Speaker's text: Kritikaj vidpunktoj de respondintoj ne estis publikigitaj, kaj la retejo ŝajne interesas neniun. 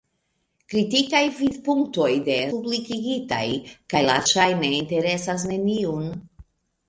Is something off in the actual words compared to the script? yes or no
yes